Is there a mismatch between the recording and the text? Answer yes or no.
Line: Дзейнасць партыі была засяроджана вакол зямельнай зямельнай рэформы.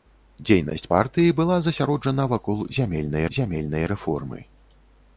no